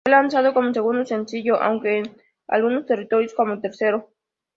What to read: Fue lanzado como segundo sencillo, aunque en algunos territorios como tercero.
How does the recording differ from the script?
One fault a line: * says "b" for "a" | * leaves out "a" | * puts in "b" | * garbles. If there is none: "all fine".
all fine